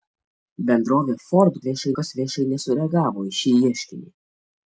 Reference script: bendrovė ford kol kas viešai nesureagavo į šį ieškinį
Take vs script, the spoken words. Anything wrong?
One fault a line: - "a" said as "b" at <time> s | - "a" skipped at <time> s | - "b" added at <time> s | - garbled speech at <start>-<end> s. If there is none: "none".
- "kol" said as "viešai" at 1.7 s